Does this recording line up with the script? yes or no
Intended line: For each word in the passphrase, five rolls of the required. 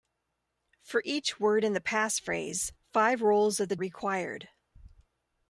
yes